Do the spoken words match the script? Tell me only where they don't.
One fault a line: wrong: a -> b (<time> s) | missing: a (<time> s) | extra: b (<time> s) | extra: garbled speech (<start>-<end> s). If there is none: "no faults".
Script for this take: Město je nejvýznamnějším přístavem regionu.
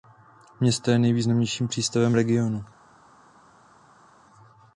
no faults